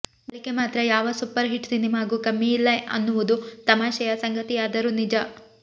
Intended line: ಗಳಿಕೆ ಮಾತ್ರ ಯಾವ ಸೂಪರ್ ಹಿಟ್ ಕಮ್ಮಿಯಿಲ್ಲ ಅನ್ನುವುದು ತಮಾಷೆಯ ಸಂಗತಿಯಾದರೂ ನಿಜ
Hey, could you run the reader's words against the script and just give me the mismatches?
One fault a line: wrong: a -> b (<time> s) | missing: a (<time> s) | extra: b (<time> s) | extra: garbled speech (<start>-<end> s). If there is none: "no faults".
extra: ಸಿನಿಮಾಗೂ (1.7 s)